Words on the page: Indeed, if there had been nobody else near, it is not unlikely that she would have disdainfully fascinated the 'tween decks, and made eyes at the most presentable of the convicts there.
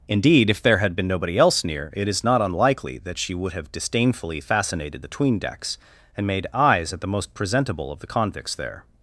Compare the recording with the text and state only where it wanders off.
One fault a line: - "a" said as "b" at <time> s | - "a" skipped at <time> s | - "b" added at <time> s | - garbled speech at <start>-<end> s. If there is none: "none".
none